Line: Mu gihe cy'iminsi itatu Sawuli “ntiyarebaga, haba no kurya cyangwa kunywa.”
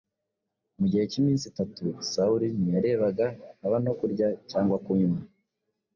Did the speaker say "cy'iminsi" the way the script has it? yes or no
yes